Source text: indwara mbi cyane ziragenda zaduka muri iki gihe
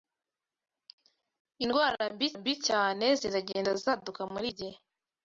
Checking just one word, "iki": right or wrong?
wrong